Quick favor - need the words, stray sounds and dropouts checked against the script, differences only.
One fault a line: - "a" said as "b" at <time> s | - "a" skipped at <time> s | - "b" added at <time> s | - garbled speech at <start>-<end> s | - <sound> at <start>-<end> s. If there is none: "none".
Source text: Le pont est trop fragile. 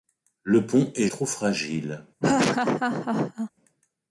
- laugh at 2.2-3.5 s